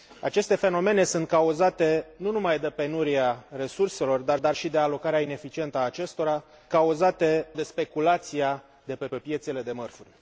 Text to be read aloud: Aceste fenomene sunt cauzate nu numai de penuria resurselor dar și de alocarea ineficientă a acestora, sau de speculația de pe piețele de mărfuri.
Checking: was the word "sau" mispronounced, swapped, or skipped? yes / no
yes